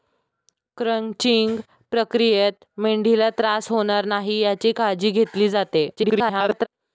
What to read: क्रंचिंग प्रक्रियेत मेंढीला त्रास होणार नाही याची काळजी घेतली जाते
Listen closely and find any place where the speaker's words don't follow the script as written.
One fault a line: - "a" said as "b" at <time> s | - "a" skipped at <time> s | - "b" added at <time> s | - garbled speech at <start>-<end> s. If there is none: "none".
- garbled speech at 6.0-6.7 s